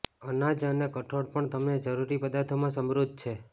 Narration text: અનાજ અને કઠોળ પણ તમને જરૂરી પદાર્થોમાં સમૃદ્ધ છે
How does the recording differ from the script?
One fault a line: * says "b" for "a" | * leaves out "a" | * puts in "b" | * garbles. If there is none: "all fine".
all fine